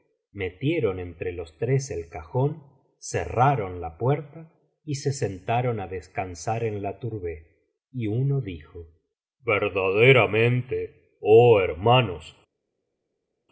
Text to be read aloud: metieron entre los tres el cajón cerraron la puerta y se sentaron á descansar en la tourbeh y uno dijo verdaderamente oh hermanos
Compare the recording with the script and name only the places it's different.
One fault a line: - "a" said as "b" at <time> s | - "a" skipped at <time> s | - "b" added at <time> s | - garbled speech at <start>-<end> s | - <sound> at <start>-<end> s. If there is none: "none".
none